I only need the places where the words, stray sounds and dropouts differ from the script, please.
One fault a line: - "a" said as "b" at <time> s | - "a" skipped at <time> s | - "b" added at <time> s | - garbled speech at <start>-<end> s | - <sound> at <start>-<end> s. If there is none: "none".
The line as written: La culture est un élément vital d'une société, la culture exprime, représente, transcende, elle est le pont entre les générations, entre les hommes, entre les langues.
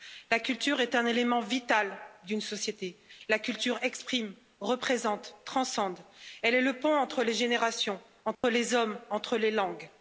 - dropout at 8.3-8.4 s